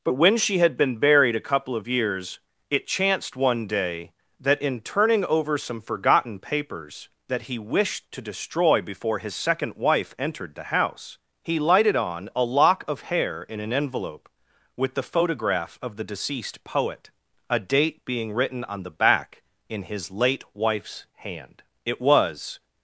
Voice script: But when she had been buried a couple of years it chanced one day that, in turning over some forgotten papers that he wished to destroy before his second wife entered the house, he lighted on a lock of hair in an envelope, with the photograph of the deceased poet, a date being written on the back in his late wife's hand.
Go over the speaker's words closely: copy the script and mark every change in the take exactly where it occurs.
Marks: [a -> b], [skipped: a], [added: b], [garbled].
But when she had been buried a couple of years it chanced one day that, in turning over some forgotten papers that he wished to destroy before his second wife entered the house, he lighted on a lock of hair in an envelope, with the photograph of the deceased poet, a date being written on the back in his late wife's hand. [added: It was]